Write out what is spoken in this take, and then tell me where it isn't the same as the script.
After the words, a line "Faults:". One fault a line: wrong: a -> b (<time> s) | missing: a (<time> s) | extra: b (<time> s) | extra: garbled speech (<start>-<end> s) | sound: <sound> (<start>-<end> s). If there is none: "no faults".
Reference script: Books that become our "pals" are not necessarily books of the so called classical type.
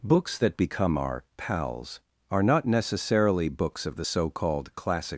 Books that become our "pals" are not necessarily books of the so called classic.
Faults:
wrong: classical type -> classic (4.8 s)